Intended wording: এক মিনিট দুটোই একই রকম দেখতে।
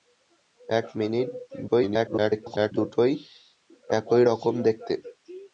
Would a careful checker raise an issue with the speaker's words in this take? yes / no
yes